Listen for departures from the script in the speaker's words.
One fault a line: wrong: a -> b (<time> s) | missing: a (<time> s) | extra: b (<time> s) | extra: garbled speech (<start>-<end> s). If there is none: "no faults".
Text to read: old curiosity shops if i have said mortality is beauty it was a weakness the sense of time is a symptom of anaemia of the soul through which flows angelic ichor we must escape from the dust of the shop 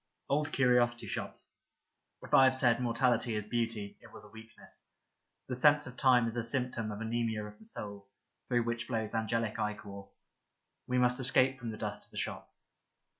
no faults